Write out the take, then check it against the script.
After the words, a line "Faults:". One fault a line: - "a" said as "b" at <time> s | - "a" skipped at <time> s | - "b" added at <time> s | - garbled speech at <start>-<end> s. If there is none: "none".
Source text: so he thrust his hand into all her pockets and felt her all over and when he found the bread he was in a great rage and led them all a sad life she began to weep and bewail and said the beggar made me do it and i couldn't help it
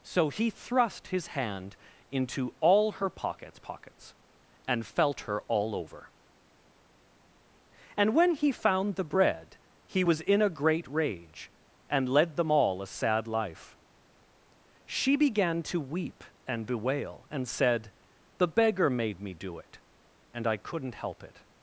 so he thrust his hand into all her pockets pockets and felt her all over and when he found the bread he was in a great rage and led them all a sad life she began to weep and bewail and said the beggar made me do it and i couldn't help it
Faults:
- "pockets" added at 3.6 s